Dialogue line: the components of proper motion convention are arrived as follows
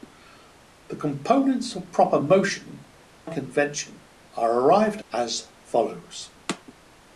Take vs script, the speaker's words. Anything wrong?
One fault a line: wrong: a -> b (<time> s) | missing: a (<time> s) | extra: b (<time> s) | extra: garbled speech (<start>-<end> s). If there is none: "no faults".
no faults